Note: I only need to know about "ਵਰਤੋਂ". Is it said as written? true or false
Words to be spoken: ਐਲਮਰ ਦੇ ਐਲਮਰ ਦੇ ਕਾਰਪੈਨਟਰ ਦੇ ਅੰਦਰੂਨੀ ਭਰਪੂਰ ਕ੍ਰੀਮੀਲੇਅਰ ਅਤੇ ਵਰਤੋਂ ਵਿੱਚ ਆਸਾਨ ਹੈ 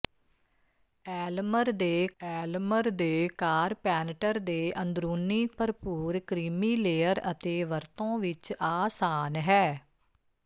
true